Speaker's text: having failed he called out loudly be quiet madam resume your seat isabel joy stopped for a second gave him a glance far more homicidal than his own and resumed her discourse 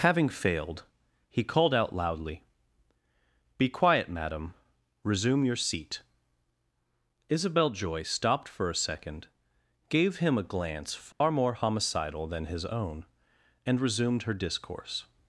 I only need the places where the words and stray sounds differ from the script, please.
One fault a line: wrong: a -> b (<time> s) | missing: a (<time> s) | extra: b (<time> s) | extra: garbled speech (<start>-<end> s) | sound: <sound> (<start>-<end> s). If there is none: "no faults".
sound: dropout (11.1-11.2 s)